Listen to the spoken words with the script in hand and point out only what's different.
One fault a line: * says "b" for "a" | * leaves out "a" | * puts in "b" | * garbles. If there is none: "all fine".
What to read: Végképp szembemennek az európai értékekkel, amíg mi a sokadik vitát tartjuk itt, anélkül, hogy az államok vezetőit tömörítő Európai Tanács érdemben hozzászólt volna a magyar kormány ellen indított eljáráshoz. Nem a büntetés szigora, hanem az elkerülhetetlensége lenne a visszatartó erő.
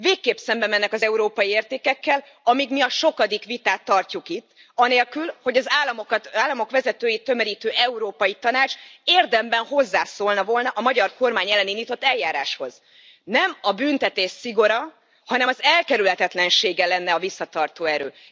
all fine